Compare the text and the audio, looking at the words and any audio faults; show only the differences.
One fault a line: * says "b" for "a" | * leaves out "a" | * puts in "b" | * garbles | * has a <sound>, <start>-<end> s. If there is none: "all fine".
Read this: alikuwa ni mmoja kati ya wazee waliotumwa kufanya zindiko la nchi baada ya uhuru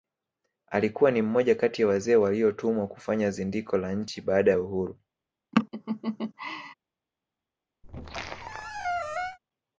* has a laugh, 5.5-6.7 s
* has a squeak, 7.8-9.4 s